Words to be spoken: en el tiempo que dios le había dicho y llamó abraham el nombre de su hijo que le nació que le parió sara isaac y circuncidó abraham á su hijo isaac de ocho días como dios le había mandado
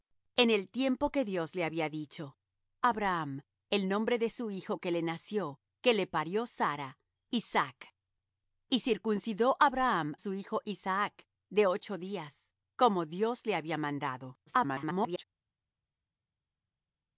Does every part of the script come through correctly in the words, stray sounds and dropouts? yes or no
no